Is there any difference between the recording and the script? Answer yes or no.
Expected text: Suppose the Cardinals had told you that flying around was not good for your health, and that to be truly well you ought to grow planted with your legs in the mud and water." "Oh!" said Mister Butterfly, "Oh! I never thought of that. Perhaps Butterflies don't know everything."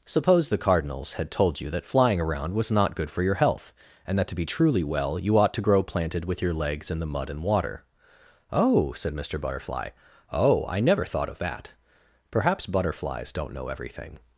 no